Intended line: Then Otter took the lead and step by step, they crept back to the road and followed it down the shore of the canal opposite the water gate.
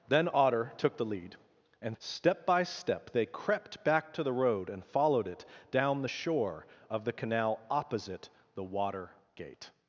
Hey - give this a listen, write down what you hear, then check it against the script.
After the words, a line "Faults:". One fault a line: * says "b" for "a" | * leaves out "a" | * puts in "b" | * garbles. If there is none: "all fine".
Then Otter took the lead and step by step, they crept back to the road and followed it down the shore of the canal opposite the water gate.
Faults:
all fine